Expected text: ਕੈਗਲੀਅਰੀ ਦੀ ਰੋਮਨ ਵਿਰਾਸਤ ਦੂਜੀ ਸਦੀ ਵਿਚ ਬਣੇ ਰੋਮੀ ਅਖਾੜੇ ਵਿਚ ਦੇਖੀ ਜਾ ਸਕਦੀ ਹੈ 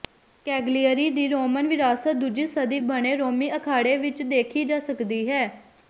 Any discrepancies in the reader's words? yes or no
yes